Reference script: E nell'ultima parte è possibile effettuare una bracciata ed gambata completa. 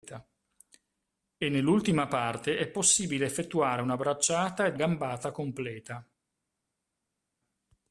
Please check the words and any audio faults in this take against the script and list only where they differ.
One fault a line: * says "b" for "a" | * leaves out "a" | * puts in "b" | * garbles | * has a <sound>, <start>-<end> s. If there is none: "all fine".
all fine